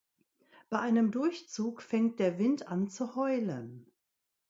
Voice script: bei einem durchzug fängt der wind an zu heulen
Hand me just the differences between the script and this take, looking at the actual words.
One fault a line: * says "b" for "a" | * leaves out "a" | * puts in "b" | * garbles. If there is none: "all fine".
all fine